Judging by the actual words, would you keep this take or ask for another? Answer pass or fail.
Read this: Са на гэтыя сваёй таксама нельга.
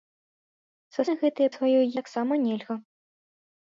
pass